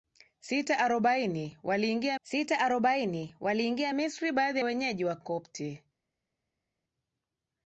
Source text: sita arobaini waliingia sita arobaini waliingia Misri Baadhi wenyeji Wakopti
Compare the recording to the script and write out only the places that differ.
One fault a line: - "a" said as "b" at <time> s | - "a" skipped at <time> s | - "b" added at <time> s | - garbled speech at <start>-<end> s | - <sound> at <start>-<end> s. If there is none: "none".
none